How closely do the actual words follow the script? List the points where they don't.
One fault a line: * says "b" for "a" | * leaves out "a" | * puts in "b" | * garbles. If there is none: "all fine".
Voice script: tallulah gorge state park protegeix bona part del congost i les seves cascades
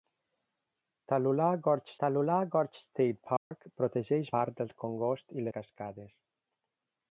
* puts in "tallulah gorge"
* leaves out "bona"
* leaves out "les seves"